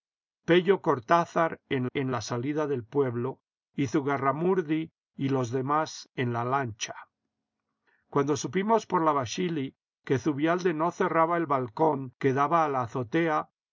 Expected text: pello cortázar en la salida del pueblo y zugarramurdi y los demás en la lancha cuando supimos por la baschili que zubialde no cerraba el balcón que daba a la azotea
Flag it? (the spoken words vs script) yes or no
yes